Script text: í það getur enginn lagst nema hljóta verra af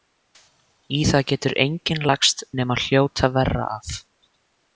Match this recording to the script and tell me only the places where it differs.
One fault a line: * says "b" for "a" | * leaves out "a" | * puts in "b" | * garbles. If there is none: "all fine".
all fine